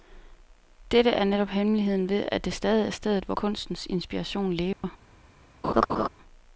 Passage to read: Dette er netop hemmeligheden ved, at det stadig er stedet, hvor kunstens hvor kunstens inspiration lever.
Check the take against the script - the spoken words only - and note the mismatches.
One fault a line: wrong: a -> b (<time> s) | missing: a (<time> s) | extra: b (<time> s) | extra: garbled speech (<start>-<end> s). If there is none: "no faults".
missing: hvor kunstens (3.9 s)